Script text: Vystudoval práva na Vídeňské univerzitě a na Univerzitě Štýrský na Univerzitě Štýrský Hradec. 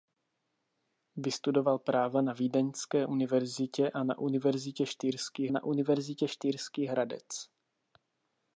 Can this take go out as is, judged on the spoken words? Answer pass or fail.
pass